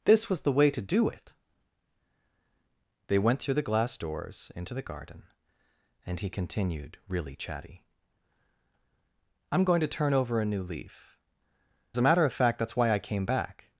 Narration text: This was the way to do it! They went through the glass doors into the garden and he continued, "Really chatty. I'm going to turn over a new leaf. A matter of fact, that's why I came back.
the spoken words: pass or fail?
pass